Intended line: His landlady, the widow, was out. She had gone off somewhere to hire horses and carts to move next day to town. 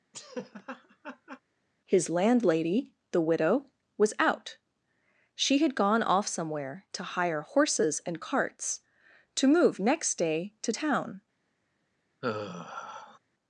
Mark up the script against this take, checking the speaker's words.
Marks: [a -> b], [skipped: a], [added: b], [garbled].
His landlady, the widow, was out. She had gone off somewhere to hire horses and carts to move next day to town.